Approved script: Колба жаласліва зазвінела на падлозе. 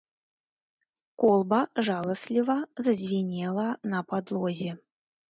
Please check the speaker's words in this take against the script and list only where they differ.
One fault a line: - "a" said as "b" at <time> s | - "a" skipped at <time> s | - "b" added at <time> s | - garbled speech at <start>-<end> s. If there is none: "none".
none